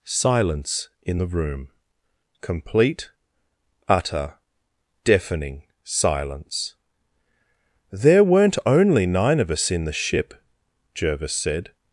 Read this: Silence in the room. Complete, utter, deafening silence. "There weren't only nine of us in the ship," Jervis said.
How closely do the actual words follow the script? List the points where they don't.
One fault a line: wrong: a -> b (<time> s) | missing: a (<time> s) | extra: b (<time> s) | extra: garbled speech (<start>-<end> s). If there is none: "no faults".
no faults